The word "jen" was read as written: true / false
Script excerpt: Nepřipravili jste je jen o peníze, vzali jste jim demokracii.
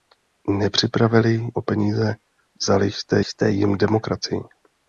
false